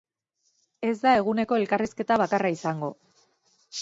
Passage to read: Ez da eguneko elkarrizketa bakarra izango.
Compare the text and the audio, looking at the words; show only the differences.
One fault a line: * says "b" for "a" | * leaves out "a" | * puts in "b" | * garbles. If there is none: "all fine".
all fine